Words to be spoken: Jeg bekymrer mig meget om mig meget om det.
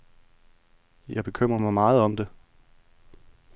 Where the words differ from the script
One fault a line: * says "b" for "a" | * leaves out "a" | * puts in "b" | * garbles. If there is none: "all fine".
* leaves out "mig meget om"